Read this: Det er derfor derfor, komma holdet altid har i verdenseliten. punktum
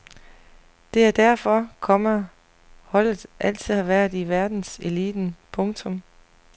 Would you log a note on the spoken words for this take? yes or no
yes